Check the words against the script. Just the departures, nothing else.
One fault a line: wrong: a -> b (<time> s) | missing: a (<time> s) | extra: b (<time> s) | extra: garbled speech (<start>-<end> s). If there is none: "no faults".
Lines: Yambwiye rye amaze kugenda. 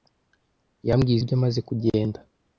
no faults